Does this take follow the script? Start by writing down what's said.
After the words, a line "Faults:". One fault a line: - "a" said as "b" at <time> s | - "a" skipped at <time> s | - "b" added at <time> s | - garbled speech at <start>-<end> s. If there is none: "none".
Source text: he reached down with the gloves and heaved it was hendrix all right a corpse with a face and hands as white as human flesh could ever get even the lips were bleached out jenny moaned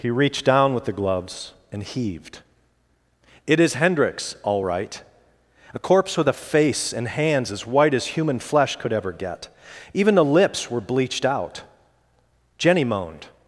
he reached down with the gloves and heaved it is hendrix all right a corpse with a face and hands as white as human flesh could ever get even the lips were bleached out jenny moaned
Faults:
- "was" said as "is" at 3.6 s